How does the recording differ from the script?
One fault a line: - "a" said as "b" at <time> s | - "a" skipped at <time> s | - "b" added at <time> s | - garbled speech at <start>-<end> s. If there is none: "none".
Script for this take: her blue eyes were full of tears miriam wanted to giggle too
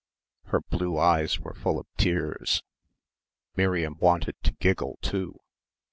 none